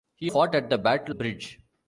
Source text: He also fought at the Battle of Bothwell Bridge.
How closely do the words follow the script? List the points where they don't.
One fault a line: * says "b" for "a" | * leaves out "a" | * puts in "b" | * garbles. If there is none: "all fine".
* leaves out "also"
* leaves out "of Bothwell"